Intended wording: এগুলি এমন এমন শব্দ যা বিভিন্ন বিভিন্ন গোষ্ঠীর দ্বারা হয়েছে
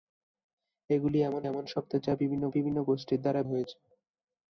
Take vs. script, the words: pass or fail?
pass